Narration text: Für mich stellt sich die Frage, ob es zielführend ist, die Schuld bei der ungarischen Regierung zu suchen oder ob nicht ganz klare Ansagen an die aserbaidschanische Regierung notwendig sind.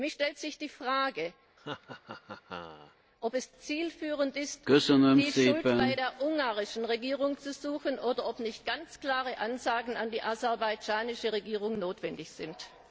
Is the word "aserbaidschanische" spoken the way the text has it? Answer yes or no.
yes